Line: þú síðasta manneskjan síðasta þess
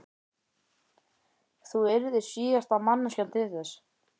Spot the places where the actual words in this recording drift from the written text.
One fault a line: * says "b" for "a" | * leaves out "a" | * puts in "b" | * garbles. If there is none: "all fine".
* puts in "yrðir"
* says "til" for "síðasta"